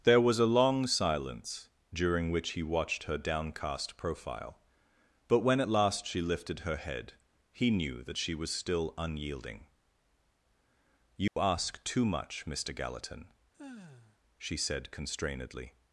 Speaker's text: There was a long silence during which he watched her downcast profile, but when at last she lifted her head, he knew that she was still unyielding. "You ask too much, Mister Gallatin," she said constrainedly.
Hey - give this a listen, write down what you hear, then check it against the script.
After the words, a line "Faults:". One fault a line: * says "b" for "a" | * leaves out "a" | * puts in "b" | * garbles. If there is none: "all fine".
There was a long silence during which he watched her downcast profile, but when at last she lifted her head, he knew that she was still unyielding. "You ask too much, Mister Gallatin," she said constrainedly.
Faults:
all fine